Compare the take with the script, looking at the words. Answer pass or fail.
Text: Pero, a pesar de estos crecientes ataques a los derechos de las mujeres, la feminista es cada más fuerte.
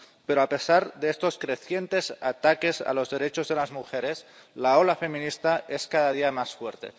fail